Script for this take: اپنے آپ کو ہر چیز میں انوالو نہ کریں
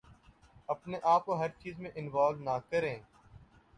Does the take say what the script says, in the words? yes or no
yes